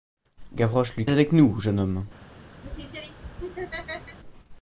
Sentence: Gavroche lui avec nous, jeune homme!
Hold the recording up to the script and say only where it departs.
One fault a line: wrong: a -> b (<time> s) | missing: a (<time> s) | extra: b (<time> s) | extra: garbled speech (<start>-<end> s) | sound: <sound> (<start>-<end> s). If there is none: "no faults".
sound: laugh (2.6-4.2 s)